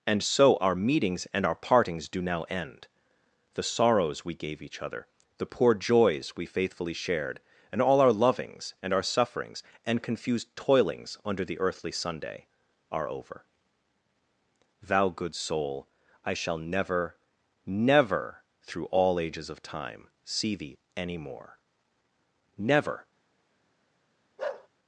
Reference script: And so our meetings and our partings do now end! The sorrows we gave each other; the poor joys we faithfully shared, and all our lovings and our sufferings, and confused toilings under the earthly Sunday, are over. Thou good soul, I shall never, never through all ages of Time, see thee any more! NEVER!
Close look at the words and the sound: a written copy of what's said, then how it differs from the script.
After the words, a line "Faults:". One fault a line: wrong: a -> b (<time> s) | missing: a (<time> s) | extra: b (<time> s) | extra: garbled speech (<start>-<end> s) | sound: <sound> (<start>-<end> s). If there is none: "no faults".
And so our meetings and our partings do now end! The sorrows we gave each other; the poor joys we faithfully shared, and all our lovings and our sufferings, and confused toilings under the earthly Sunday, are over. Thou good soul, I shall never, never through all ages of Time, see thee any more! NEVER!
Faults:
sound: bark (24.4-24.7 s)